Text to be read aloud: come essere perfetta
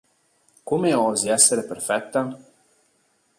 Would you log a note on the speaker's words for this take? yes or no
yes